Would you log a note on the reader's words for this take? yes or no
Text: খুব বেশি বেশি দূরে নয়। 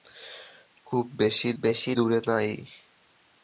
no